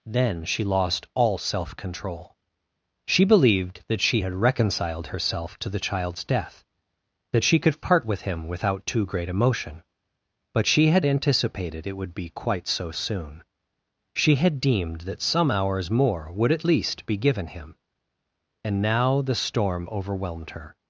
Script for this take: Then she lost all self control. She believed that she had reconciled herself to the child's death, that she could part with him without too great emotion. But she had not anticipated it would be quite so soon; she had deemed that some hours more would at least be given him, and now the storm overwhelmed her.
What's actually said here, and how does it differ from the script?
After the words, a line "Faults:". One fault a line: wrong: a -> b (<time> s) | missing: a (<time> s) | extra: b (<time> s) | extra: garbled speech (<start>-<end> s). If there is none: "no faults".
Then she lost all self control. She believed that she had reconciled herself to the child's death, that she could part with him without too great emotion. But she had anticipated it would be quite so soon; she had deemed that some hours more would at least be given him, and now the storm overwhelmed her.
Faults:
missing: not (11.1 s)